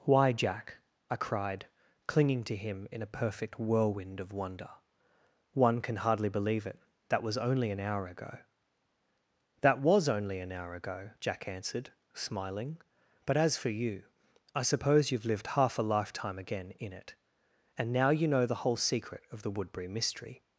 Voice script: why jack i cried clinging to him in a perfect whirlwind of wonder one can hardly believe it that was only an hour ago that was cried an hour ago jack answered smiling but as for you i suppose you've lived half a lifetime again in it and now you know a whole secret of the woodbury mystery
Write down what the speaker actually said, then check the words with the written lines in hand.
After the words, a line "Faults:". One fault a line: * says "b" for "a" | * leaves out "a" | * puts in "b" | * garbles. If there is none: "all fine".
why jack i cried clinging to him in a perfect whirlwind of wonder one can hardly believe it that was only an hour ago that was only an hour ago jack answered smiling but as for you i suppose you've lived half a lifetime again in it and now you know the whole secret of the woodbury mystery
Faults:
* says "only" for "cried"
* says "the" for "a"